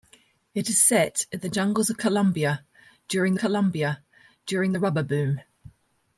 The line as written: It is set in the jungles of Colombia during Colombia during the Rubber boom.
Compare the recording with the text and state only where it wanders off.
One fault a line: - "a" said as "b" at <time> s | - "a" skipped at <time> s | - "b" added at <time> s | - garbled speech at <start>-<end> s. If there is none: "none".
none